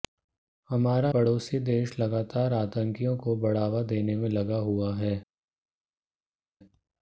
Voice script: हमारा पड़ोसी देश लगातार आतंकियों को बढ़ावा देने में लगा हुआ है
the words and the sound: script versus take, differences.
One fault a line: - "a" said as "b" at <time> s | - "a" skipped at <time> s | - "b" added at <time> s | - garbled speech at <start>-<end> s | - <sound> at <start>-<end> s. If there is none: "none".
none